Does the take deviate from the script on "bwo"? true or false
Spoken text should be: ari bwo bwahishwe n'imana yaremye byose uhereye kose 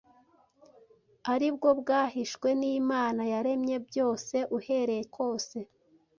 false